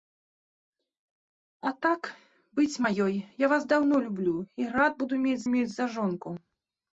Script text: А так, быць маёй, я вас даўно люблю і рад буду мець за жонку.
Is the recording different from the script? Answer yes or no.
yes